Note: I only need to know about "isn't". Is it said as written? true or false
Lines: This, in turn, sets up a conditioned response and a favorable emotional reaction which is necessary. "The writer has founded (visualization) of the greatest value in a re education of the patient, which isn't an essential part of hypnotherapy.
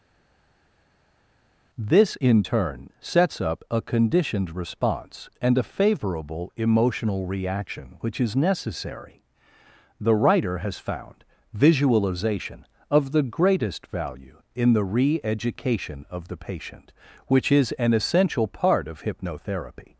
false